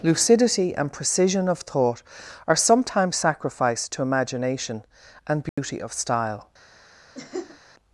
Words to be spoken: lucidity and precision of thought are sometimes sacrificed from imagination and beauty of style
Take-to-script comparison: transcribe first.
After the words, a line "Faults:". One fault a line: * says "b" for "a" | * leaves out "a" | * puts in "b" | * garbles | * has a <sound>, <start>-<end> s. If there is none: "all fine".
lucidity and precision of thought are sometimes sacrificed to imagination and beauty of style
Faults:
* says "to" for "from"
* has a dropout, 5.5-5.6 s
* has a laugh, 7.1-7.6 s